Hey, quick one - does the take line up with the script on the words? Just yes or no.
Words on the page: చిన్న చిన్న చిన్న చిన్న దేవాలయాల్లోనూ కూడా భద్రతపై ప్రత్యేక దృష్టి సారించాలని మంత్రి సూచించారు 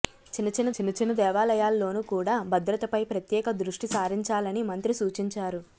yes